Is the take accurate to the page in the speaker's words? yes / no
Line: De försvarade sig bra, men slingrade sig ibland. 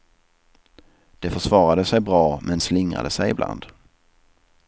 yes